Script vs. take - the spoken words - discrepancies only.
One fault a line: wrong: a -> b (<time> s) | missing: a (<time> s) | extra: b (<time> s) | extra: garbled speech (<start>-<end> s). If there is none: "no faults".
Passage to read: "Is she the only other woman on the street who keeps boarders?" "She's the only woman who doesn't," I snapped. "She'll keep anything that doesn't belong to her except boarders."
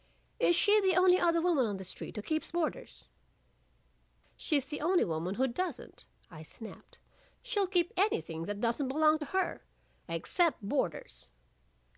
no faults